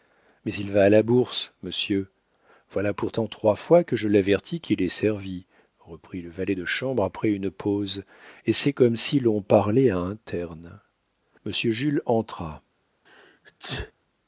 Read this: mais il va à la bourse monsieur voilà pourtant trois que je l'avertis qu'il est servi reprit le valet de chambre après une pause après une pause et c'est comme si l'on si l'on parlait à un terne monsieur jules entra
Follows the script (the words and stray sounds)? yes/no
no